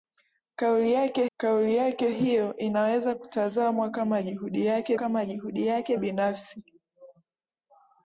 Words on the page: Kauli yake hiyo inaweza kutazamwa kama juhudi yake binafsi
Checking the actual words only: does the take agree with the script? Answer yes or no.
no